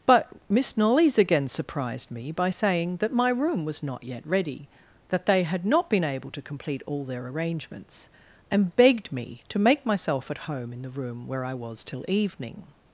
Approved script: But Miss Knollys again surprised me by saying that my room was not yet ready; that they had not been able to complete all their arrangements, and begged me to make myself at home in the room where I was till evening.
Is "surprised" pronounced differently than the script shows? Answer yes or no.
no